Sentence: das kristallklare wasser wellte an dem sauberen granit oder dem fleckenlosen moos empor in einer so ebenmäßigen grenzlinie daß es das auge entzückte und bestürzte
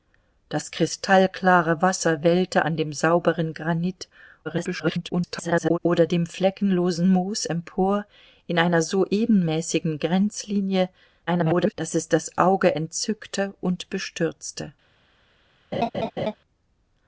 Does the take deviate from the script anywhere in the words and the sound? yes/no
yes